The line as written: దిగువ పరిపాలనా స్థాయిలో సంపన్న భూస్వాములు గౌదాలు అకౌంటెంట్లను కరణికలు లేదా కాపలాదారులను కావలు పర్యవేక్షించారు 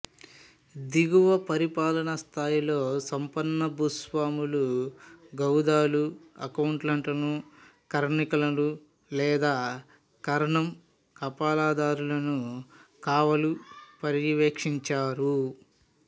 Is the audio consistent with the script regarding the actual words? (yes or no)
no